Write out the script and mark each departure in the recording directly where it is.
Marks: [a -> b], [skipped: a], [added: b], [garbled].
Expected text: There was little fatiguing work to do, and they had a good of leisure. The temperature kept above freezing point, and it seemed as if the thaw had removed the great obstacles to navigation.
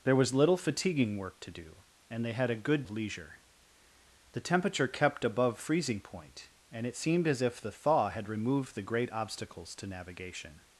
There was little fatiguing work to do, and they had a good of leisure. The temperature kept above freezing point, and it seemed as if the thaw had removed the great obstacles to navigation.